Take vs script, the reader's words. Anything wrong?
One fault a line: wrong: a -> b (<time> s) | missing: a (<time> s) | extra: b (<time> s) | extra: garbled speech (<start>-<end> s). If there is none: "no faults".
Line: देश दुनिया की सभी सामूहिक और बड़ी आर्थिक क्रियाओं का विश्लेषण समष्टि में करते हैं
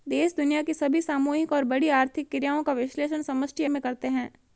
no faults